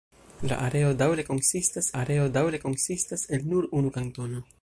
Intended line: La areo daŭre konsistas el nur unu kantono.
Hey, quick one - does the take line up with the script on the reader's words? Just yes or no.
no